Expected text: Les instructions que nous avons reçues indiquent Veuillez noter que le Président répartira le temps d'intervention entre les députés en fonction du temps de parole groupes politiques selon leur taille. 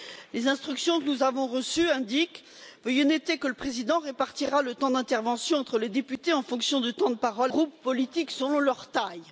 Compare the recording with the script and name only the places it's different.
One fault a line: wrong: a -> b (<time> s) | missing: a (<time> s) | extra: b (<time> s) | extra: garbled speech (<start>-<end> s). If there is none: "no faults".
no faults